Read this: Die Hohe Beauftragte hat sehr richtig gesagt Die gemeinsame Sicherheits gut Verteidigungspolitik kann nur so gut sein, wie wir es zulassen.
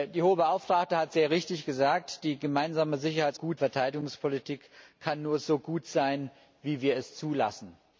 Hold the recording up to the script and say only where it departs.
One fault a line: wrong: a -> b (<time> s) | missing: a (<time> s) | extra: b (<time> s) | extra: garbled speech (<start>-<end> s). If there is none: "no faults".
no faults